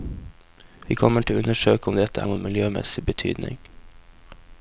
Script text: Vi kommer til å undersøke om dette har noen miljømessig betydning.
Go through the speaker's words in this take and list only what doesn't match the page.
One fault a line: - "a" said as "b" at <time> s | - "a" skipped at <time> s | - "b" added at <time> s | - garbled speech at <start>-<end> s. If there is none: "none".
- "har" skipped at 2.2 s